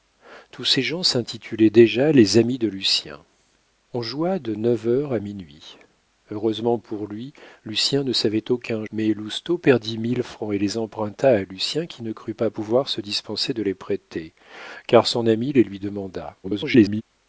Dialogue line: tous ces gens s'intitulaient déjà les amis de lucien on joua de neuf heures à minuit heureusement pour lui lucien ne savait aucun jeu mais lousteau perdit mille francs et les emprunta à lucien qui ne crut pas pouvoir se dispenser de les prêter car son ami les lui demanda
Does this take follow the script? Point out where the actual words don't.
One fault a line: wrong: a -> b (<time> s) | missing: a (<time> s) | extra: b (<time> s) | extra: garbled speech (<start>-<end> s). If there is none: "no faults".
missing: jeu (8.8 s)
extra: garbled speech (16.4-17.0 s)